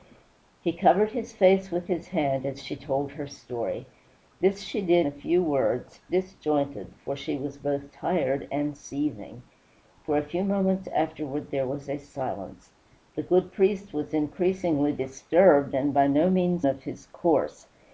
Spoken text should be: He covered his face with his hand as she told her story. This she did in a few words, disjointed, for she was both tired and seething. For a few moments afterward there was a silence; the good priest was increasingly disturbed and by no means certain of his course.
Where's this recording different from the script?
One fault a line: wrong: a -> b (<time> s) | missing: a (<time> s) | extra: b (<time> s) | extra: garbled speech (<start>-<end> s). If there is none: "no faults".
missing: in (5.1 s)
missing: certain (16.6 s)